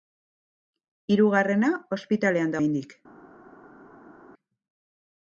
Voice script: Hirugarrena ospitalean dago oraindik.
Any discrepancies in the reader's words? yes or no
yes